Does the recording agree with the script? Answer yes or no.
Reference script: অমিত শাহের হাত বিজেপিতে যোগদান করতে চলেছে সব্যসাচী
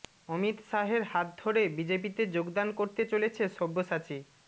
no